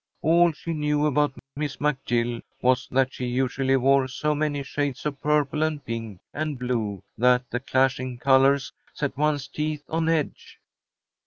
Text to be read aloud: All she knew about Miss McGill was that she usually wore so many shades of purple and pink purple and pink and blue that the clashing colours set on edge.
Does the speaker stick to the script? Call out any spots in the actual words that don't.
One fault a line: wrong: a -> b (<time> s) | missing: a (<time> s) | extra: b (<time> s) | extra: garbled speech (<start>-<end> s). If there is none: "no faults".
missing: purple (6.2 s)
missing: pink and (6.6 s)
extra: one's teeth (9.2 s)